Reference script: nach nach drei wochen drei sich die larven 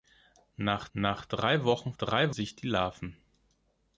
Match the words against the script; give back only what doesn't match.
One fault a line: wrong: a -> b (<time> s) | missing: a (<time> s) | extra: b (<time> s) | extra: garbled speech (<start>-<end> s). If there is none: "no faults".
no faults